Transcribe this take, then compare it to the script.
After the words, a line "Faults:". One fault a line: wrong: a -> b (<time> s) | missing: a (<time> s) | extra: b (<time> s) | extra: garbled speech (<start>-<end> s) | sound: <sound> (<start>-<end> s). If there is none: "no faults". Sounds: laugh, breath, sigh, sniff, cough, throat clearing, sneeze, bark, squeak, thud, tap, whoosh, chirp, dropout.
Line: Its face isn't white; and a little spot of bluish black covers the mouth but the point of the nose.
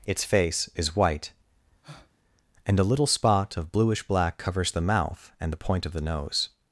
Its face is white; and a little spot of bluish black covers the mouth and the point of the nose.
Faults:
wrong: isn't -> is (0.8 s)
sound: breath (1.8-2.1 s)
wrong: but -> and (5.4 s)